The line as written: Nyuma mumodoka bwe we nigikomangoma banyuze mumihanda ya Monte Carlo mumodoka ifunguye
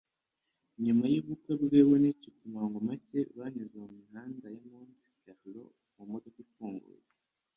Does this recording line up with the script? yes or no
no